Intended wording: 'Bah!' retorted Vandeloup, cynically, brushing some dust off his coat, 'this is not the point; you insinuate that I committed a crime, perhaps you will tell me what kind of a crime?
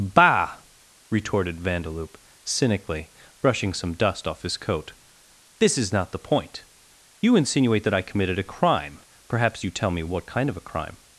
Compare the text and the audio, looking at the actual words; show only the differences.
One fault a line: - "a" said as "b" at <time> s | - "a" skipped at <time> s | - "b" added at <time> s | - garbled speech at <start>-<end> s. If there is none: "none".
- "will" skipped at 9.7 s